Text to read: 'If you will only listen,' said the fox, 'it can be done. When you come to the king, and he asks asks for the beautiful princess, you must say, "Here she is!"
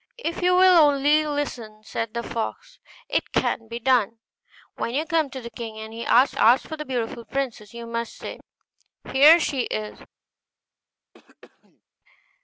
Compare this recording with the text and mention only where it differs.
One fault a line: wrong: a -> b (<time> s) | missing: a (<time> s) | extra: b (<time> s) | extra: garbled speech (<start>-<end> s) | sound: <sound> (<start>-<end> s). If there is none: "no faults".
sound: throat clearing (11.1-11.8 s)